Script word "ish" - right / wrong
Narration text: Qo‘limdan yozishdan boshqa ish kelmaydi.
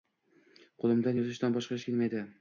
right